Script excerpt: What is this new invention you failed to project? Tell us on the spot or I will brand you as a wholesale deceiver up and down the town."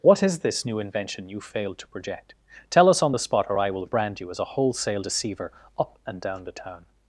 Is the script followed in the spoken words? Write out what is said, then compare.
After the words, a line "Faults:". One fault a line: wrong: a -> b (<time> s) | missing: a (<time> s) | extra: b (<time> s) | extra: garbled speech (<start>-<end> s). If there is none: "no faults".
What is this new invention you failed to project? Tell us on the spot or I will brand you as a wholesale deceiver up and down the town."
Faults:
no faults